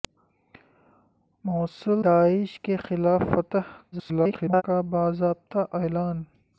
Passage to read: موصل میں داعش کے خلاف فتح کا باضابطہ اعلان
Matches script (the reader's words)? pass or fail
fail